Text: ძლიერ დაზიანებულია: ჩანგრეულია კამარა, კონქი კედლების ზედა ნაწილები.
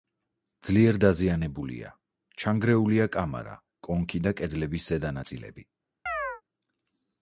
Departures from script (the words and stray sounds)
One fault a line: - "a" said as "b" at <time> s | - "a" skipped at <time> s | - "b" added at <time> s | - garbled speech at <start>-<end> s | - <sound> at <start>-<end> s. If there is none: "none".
- "და" added at 4.3 s
- chirp at 6.1-6.4 s